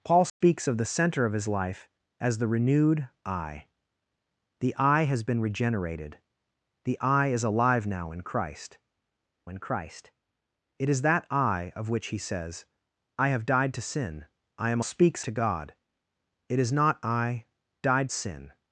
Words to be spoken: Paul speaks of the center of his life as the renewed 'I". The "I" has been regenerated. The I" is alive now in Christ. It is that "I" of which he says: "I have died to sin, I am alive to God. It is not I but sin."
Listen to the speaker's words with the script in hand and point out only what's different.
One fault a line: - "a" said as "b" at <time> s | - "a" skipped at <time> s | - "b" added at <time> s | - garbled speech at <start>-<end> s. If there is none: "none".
- "in Christ" added at 9.5 s
- "alive" said as "speaks" at 14.8 s
- "but" said as "died" at 17.8 s